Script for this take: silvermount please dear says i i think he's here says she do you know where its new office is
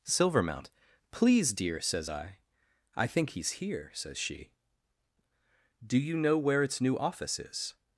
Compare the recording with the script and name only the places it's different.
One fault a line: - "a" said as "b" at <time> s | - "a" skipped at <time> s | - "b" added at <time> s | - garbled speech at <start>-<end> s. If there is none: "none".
none